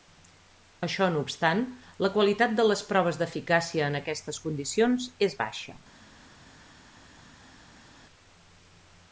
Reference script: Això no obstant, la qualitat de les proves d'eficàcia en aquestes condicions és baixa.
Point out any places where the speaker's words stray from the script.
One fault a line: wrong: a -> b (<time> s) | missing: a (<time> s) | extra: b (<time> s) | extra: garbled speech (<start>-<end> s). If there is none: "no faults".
no faults